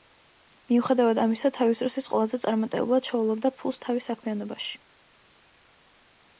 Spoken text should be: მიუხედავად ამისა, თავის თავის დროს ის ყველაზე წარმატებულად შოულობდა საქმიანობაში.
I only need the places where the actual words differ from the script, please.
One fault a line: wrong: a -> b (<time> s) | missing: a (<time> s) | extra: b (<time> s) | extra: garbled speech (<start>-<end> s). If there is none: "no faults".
missing: თავის (1.8 s)
extra: ფულს თავის (3.6 s)